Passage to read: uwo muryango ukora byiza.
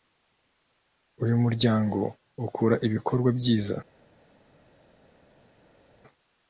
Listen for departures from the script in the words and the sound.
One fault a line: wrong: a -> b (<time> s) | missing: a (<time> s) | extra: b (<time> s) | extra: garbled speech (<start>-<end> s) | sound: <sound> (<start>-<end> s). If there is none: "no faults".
wrong: uwo -> uyu (1.2 s)
extra: ibikorwa (2.9 s)